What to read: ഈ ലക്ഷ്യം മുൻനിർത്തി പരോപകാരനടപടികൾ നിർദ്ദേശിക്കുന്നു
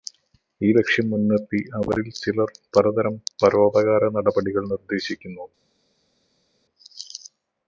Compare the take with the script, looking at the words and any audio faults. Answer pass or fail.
fail